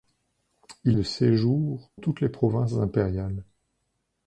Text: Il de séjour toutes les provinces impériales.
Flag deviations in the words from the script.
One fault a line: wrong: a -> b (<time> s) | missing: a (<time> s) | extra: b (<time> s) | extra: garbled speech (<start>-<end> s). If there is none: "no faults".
no faults